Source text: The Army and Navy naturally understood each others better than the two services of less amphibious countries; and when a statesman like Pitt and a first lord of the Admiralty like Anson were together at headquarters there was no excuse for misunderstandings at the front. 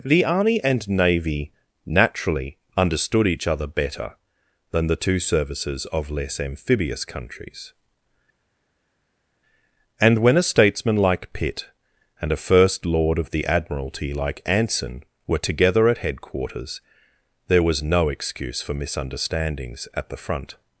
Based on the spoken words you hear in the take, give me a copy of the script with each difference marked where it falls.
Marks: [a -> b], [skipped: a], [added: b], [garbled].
The Army and Navy naturally understood each [others -> other] better than the two services of less amphibious countries; and when a statesman like Pitt and a first lord of the Admiralty like Anson were together at headquarters there was no excuse for misunderstandings at the front.